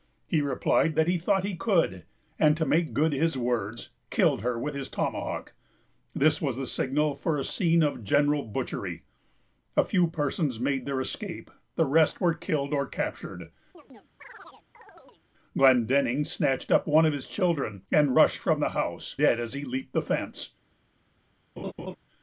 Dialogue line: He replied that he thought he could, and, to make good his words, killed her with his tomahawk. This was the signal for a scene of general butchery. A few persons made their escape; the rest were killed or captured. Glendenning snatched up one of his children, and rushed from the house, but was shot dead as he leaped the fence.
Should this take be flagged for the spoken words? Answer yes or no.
yes